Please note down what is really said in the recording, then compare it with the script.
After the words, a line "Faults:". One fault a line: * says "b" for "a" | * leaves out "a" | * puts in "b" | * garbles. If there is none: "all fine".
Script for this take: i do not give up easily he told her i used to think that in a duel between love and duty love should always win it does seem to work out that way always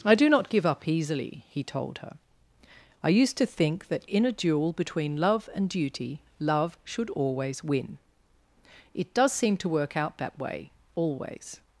i do not give up easily he told her i used to think that in a duel between love and duty love should always win it does seem to work out that way always
Faults:
all fine